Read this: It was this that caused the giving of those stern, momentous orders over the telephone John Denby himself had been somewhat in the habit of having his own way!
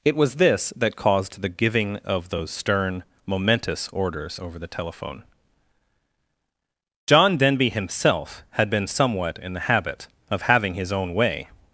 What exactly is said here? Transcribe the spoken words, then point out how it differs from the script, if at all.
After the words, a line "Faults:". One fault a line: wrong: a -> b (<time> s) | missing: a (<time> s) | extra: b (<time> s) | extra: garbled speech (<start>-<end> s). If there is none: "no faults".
It was this that caused the giving of those stern, momentous orders over the telephone John Denby himself had been somewhat in the habit of having his own way!
Faults:
no faults